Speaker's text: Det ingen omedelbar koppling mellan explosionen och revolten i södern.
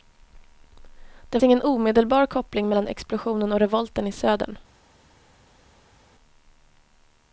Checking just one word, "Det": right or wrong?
right